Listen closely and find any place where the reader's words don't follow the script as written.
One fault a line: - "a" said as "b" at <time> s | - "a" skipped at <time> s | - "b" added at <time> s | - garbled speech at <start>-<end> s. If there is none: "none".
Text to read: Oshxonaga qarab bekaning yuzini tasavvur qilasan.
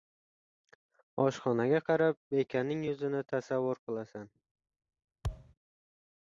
none